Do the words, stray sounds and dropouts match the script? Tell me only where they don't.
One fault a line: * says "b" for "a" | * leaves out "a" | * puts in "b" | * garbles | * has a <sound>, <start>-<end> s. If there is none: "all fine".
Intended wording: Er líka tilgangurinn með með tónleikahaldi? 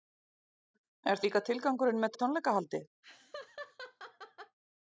* has a laugh, 3.0-4.6 s